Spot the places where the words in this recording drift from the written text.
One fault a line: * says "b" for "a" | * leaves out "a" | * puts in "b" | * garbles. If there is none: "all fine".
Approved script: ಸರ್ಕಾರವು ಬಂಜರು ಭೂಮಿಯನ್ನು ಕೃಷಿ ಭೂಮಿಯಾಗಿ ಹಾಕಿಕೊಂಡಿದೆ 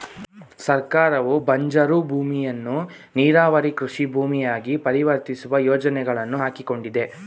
* puts in "ನೀರಾವರಿ"
* puts in "ಪರಿವರ್ತಿಸುವ ಯೋಜನೆಗಳನ್ನು"